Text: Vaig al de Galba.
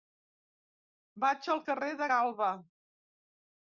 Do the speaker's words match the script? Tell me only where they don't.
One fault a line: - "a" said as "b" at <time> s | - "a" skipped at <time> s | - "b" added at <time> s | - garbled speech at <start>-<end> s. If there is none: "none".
- "carrer" added at 1.7 s